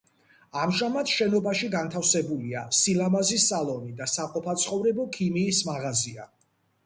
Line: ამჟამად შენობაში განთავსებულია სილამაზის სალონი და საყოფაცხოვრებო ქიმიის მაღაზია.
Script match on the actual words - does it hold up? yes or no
yes